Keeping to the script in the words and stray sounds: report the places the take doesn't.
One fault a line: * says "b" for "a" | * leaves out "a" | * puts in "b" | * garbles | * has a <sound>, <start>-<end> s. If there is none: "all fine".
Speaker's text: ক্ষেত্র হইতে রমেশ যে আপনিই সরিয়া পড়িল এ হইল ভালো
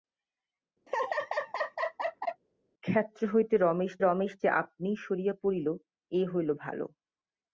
* has a laugh, 0.9-2.4 s
* puts in "রমেশ"